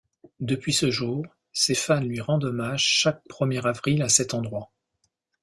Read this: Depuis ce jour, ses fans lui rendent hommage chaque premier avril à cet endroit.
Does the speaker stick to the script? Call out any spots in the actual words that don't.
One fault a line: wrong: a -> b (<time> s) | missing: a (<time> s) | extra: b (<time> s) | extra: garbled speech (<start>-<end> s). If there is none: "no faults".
no faults